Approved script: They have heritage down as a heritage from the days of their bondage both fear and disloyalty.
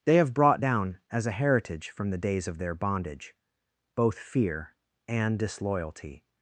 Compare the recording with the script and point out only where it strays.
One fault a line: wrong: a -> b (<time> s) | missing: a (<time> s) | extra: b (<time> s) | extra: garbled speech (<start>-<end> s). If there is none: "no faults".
wrong: heritage -> brought (0.3 s)